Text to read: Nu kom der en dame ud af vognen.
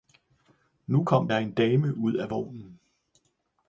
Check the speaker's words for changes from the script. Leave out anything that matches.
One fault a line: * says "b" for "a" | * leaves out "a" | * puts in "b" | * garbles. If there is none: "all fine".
all fine